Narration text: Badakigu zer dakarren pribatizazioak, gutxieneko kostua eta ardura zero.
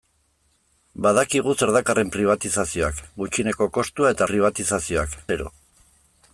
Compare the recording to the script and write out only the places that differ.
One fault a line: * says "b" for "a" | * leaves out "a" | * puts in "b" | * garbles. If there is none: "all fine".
* says "pribatizazioak" for "ardura"